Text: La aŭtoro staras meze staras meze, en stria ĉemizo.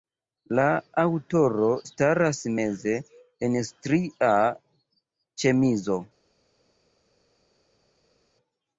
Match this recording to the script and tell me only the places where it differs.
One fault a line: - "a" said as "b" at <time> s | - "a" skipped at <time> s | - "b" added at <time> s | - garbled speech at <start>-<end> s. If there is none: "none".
- "staras meze" skipped at 3.0 s